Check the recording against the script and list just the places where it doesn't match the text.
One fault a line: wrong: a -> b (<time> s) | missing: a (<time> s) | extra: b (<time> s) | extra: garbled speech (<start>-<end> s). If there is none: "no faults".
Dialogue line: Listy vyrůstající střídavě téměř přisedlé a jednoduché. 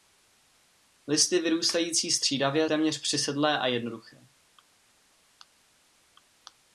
no faults